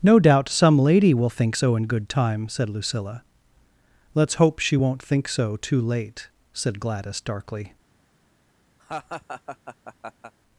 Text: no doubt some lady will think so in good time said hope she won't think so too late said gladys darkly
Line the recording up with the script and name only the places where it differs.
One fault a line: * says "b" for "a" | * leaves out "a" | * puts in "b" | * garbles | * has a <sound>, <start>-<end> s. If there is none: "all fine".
* puts in "lucilla let's"
* has a laugh, 8.8-10.3 s